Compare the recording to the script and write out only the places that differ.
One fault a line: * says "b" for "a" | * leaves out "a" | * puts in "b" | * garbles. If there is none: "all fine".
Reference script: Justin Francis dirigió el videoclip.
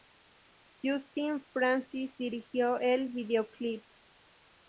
all fine